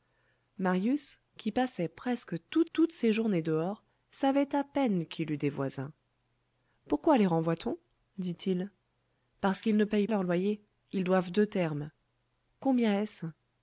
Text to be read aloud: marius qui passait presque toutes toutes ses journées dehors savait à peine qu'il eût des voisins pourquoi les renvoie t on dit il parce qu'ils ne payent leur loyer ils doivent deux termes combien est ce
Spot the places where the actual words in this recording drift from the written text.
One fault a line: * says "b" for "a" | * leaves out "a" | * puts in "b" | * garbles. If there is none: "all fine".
all fine